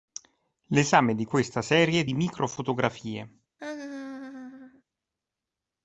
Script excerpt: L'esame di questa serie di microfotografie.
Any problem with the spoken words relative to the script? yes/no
no